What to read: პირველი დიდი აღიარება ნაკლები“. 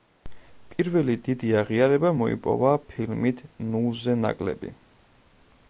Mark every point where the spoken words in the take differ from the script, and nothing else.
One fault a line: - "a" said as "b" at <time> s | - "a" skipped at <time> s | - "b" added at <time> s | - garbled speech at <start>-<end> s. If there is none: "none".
- "მოიპოვა ფილმით ნულზე" added at 2.2 s